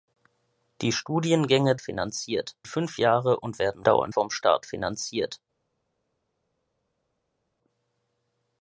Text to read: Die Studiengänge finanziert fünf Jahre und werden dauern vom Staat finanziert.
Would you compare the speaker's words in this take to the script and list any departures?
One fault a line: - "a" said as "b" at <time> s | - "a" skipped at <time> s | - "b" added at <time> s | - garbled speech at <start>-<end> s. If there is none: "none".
none